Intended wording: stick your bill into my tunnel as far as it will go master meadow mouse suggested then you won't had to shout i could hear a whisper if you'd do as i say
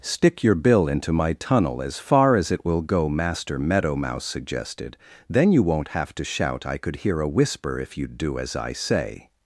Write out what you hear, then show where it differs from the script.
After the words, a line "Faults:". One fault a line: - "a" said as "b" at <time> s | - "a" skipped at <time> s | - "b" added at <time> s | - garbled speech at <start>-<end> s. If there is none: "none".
stick your bill into my tunnel as far as it will go master meadow mouse suggested then you won't have to shout i could hear a whisper if you'd do as i say
Faults:
- "had" said as "have" at 5.9 s